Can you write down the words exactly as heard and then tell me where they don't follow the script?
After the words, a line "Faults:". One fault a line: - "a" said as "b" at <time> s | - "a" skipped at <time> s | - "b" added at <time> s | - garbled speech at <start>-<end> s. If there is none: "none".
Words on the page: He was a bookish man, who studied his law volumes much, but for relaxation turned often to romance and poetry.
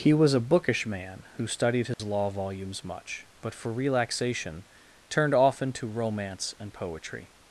He was a bookish man, who studied his law volumes much, but for relaxation turned often to romance and poetry.
Faults:
none